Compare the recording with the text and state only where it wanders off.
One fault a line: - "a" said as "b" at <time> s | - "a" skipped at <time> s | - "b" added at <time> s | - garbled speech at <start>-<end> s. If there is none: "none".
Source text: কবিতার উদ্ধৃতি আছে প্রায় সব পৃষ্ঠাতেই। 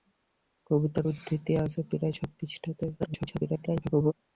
- garbled speech at 3.0-4.1 s